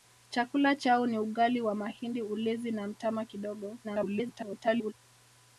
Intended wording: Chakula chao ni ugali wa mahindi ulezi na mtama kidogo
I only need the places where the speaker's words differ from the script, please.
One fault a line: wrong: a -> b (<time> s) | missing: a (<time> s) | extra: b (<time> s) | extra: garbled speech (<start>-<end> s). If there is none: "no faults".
extra: garbled speech (3.8-4.9 s)